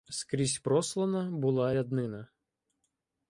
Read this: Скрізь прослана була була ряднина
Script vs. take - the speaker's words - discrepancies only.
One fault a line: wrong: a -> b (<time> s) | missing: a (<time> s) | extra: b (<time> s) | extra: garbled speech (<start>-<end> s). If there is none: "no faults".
missing: була (1.8 s)